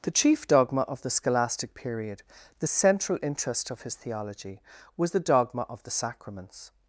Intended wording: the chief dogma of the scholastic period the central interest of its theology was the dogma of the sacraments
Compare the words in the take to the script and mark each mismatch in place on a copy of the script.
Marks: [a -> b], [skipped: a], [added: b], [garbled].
the chief dogma of the scholastic period the central interest of [its -> his] theology was the dogma of the sacraments